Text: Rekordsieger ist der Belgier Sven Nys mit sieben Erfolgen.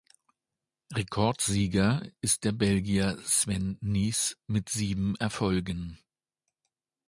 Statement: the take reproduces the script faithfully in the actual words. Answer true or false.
true